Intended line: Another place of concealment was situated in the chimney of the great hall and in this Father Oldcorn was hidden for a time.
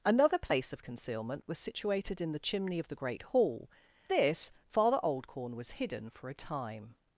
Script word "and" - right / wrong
wrong